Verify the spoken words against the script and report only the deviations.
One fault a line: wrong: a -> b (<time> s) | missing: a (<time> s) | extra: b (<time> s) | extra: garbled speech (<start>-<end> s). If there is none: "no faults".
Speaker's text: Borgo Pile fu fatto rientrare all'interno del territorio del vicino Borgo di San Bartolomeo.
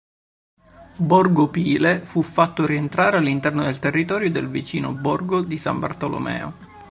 no faults